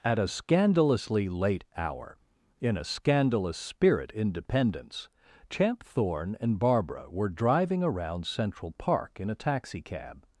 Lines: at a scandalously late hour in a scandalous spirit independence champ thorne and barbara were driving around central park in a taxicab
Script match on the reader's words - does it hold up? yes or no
yes